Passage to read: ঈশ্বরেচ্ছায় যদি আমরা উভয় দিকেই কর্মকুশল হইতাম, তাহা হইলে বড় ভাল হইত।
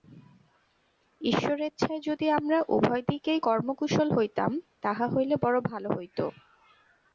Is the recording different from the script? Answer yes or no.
no